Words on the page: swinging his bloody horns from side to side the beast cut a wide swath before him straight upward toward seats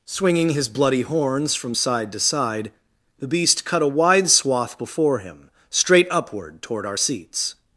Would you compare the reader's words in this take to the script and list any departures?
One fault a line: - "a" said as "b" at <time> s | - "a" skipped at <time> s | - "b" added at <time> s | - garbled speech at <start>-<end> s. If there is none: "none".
- "our" added at 6.9 s